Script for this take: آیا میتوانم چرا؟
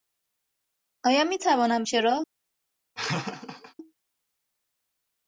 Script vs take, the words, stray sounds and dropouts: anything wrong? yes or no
yes